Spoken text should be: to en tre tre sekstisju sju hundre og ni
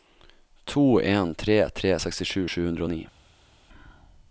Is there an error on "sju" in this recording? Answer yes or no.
no